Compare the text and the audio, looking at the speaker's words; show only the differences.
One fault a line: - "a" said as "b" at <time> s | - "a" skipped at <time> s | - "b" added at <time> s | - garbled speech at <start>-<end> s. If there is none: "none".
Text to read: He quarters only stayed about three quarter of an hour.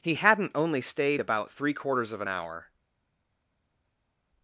- "quarters" said as "hadn't" at 0.1 s
- "quarter" said as "quarters" at 1.7 s